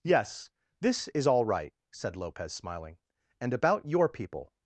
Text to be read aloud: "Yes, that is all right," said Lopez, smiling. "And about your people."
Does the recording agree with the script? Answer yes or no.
no